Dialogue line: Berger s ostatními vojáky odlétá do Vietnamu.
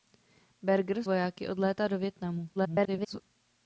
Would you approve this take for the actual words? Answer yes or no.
no